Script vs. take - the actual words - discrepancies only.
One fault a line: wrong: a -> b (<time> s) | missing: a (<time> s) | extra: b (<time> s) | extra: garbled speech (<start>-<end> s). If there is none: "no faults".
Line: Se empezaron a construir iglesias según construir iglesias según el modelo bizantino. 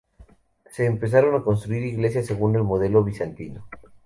missing: construir iglesias según (2.5 s)